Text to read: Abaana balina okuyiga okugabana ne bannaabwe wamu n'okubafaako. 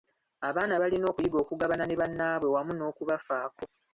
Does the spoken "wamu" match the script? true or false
true